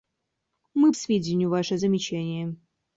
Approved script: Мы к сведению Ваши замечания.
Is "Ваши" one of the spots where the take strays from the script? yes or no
no